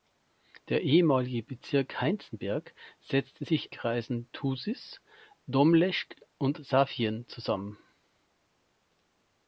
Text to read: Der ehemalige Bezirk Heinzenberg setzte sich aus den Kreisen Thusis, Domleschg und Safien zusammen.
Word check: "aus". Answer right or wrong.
wrong